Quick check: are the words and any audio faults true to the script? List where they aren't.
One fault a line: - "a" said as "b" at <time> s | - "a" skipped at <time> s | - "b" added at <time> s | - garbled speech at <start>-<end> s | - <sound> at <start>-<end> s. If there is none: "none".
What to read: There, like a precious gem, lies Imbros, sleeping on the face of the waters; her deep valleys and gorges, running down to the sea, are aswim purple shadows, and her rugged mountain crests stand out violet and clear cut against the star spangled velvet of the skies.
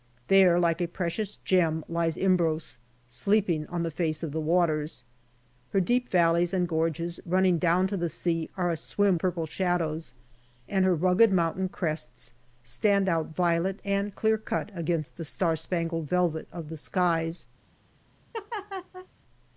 - laugh at 18.3-19.1 s